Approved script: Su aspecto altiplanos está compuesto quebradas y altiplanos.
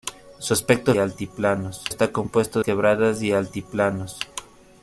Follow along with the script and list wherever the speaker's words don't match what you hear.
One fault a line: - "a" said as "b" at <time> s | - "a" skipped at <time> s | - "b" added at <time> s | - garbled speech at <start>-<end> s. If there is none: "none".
none